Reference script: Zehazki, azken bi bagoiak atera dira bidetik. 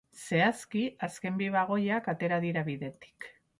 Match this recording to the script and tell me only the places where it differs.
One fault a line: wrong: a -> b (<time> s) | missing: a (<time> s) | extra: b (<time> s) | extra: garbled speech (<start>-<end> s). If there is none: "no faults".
no faults